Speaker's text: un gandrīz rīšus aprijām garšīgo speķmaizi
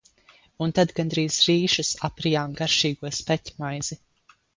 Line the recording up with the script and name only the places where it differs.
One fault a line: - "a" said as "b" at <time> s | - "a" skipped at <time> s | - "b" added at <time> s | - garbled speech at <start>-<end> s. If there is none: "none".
- "tad" added at 0.8 s